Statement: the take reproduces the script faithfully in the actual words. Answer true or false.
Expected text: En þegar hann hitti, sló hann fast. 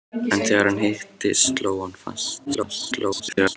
false